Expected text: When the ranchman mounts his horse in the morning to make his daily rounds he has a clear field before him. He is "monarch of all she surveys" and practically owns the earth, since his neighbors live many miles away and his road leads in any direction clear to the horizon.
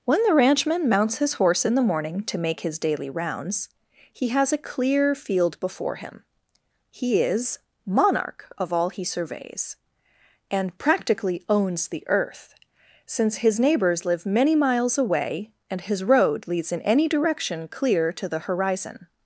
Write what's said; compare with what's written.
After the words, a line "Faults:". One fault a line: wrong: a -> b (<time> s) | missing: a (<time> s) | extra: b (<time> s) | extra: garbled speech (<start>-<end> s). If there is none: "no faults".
When the ranchman mounts his horse in the morning to make his daily rounds he has a clear field before him. He is "monarch of all he surveys" and practically owns the earth, since his neighbors live many miles away and his road leads in any direction clear to the horizon.
Faults:
wrong: she -> he (8.9 s)